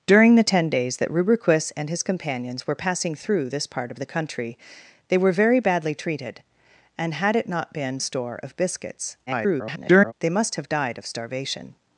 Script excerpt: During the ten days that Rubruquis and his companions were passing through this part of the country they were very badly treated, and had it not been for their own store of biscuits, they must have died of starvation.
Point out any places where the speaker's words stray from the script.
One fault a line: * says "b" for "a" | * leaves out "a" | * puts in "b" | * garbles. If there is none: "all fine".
* leaves out "for their own"
* garbles